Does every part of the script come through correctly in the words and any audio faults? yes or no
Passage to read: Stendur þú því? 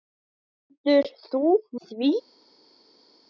yes